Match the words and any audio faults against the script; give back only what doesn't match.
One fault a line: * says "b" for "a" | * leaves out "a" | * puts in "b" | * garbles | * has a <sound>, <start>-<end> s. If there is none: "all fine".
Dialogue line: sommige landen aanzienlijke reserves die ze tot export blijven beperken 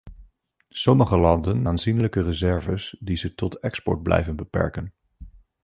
all fine